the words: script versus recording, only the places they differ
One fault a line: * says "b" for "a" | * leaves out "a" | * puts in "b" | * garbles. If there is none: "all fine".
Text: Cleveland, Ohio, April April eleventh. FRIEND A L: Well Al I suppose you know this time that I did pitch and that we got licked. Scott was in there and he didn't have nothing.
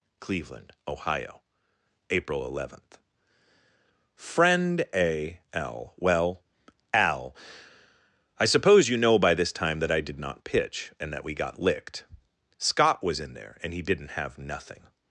* leaves out "April"
* puts in "by"
* puts in "not"